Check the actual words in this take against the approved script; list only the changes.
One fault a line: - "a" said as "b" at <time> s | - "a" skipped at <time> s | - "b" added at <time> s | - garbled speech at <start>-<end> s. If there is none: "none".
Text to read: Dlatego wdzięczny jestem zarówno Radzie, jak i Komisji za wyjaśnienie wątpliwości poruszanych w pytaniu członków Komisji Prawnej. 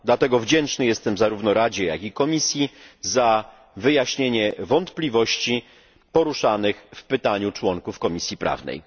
none